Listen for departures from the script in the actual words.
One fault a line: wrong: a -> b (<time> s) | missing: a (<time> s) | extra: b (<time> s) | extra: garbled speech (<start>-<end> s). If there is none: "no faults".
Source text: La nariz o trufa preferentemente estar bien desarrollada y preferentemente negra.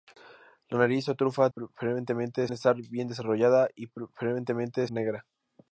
no faults